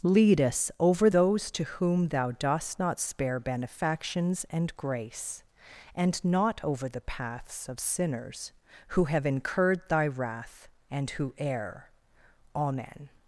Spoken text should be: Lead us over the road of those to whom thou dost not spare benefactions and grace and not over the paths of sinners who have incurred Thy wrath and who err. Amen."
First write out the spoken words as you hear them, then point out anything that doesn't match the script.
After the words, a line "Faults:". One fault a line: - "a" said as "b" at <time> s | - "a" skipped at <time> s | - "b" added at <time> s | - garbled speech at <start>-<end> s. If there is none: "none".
Lead us over those to whom thou dost not spare benefactions and grace and not over the paths of sinners who have incurred Thy wrath and who err. Amen."
Faults:
- "the road of" skipped at 1.1 s